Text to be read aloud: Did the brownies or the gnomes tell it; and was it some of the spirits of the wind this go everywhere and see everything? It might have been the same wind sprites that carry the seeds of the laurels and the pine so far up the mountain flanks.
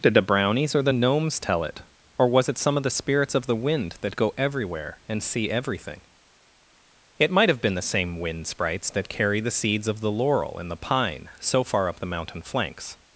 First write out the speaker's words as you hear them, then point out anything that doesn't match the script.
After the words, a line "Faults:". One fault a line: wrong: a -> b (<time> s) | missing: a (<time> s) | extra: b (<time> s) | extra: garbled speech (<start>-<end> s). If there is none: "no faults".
Did the brownies or the gnomes tell it; or was it some of the spirits of the wind that go everywhere and see everything? It might have been the same wind sprites that carry the seeds of the laurel and the pine so far up the mountain flanks.
Faults:
wrong: and -> or (2.2 s)
wrong: this -> that (4.0 s)
wrong: laurels -> laurel (10.1 s)